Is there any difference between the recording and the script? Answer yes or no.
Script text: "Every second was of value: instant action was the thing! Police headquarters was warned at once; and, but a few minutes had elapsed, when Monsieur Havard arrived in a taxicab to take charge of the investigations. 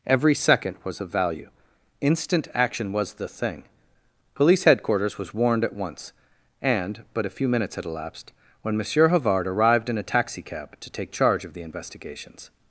no